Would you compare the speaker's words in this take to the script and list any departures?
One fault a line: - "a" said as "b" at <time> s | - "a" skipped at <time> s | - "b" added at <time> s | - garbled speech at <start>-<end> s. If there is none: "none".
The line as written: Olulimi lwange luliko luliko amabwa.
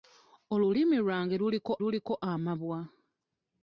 none